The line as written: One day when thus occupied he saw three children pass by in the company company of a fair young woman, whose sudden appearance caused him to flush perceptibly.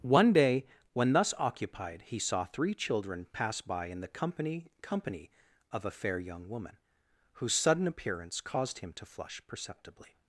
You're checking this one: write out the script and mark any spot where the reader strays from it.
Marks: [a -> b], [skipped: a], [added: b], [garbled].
One day when thus occupied he saw three children pass by in the company company of a fair young woman, whose sudden appearance caused him to flush perceptibly.